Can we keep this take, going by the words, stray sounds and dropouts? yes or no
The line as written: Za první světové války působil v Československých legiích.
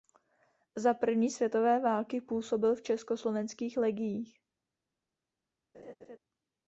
no